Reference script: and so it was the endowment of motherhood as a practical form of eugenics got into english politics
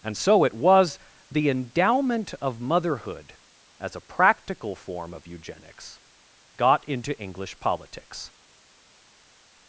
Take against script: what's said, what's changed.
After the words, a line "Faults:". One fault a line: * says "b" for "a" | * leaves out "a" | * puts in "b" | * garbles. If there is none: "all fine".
and so it was the endowment of motherhood as a practical form of eugenics got into english politics
Faults:
all fine